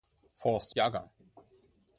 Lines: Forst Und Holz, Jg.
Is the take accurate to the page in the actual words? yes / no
no